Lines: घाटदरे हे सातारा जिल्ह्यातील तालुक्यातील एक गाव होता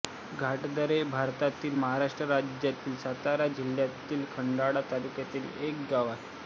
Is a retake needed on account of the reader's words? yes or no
yes